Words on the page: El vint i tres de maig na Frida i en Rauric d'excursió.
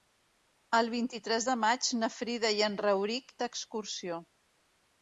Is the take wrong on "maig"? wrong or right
right